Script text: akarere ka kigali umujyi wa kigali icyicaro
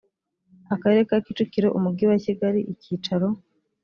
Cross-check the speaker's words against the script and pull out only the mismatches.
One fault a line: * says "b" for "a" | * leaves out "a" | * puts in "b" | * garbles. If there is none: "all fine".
* says "kicukiro" for "kigali"